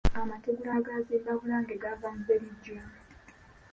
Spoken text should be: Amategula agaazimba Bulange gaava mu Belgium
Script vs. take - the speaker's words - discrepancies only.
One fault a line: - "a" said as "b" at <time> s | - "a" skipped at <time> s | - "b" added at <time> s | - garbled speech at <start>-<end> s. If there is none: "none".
none